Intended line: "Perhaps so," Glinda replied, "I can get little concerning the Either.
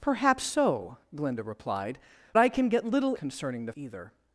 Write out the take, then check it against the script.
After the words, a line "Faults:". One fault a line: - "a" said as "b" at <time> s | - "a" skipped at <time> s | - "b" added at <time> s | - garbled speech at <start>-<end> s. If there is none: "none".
"Perhaps so," Glinda replied, "I can get little concerning the Either.
Faults:
none